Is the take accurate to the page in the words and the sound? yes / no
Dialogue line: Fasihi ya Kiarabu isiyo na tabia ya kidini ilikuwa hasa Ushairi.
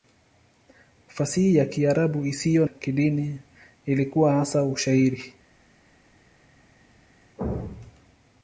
no